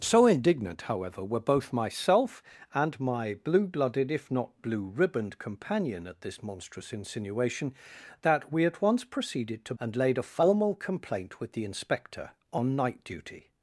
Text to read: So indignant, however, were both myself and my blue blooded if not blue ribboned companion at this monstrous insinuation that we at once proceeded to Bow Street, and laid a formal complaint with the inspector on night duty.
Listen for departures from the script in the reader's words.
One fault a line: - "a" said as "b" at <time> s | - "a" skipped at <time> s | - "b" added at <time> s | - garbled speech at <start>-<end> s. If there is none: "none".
- "Bow Street" skipped at 9.7 s